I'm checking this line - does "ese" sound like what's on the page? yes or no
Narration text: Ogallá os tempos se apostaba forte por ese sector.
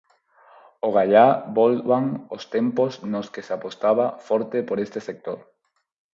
no